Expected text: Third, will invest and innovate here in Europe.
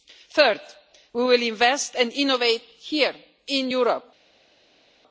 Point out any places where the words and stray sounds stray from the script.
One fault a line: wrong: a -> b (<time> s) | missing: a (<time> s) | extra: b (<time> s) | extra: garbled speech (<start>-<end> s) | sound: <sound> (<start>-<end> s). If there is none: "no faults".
extra: we (1.1 s)